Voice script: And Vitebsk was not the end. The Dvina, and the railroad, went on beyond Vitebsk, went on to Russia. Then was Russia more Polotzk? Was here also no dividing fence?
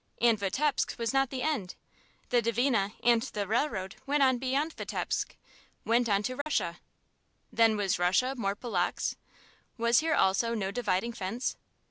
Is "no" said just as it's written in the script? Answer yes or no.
yes